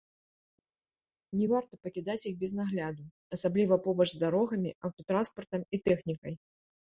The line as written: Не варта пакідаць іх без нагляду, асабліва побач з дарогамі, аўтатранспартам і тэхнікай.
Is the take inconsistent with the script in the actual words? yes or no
no